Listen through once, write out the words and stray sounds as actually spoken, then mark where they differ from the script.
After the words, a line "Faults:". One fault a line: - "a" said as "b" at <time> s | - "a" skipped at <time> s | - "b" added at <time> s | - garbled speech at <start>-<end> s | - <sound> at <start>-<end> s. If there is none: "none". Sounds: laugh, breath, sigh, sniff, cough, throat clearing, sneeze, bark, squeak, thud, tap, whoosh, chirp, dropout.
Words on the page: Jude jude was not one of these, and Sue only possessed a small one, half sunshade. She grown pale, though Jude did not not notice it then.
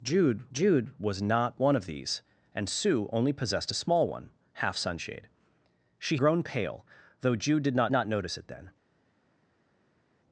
Jude jude was not one of these, and Sue only possessed a small one, half sunshade. She grown pale, though Jude did not not notice it then.
Faults:
none